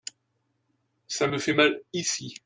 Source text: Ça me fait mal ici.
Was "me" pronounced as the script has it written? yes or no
yes